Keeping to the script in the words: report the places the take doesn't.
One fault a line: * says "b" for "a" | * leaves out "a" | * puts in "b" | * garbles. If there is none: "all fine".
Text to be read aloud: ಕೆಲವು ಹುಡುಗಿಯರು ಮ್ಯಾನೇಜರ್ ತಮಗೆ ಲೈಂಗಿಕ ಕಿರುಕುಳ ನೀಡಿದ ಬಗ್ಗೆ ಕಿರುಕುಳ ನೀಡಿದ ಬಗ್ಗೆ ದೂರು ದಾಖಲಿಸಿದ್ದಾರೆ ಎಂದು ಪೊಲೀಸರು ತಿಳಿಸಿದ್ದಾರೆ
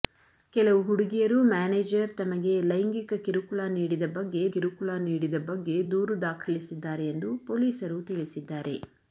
all fine